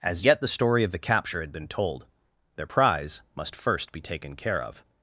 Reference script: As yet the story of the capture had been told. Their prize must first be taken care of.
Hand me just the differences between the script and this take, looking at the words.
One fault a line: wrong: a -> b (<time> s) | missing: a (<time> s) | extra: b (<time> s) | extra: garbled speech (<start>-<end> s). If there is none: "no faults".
no faults